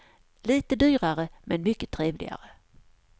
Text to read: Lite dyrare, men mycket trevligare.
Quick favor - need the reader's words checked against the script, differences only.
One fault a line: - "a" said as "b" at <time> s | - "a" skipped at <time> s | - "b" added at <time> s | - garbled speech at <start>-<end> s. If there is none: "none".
none